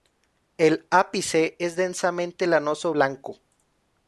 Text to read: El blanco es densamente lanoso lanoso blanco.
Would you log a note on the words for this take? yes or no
yes